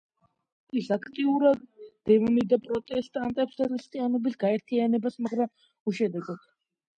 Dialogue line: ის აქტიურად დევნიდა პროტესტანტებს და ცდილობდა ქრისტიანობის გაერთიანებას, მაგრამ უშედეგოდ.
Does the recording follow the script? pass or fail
fail